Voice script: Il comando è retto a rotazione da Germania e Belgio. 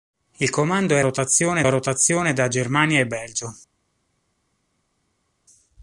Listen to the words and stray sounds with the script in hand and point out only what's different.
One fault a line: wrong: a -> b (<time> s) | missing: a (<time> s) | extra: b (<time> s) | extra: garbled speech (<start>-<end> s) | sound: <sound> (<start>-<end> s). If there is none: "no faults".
wrong: retto -> rotazione (1.0 s)